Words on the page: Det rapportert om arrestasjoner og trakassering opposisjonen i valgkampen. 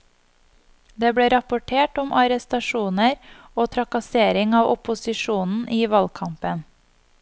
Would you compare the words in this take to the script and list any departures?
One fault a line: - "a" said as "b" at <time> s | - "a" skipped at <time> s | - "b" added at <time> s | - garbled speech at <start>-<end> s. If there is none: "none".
- "ble" added at 1.2 s
- "av" added at 4.6 s